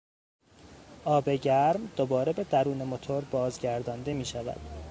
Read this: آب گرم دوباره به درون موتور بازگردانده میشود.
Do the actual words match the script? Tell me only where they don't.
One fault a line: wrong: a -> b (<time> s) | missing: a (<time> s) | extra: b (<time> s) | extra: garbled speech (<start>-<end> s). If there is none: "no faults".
no faults